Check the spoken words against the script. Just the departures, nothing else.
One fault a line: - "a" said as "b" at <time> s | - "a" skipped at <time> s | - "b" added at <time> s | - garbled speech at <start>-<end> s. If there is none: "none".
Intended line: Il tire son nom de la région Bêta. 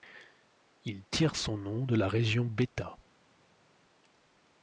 none